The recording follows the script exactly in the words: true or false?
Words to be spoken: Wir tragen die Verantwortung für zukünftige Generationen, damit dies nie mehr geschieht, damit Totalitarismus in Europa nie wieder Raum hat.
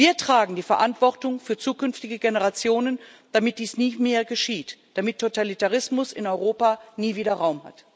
true